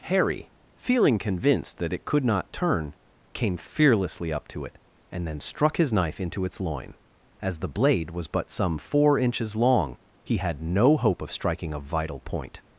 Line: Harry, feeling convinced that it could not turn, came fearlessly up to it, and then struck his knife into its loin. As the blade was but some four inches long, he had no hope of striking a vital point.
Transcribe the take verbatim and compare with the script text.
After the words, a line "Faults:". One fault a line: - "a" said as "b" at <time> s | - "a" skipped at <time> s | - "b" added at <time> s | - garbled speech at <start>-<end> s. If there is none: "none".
Harry, feeling convinced that it could not turn, came fearlessly up to it, and then struck his knife into its loin. As the blade was but some four inches long, he had no hope of striking a vital point.
Faults:
none